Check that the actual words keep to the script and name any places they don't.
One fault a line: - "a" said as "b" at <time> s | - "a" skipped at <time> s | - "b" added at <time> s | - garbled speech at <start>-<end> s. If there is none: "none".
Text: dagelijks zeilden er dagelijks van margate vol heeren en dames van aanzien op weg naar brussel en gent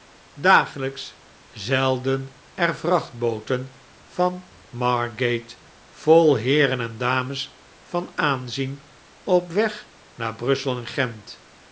- "dagelijks" said as "vrachtbooten" at 2.8 s